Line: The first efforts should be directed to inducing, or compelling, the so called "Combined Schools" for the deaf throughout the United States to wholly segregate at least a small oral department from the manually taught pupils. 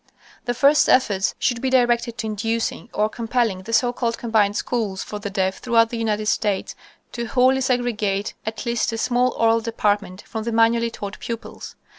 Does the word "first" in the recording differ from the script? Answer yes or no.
no